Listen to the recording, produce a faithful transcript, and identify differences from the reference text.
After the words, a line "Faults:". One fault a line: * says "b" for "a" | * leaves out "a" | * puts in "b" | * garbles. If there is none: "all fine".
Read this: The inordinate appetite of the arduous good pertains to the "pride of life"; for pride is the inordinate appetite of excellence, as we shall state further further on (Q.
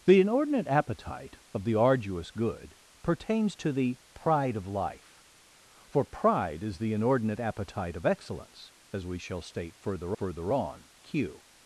The inordinate appetite of the arduous good pertains to the "pride of life"; for pride is the inordinate appetite of excellence, as we shall state further further on (Q.
Faults:
all fine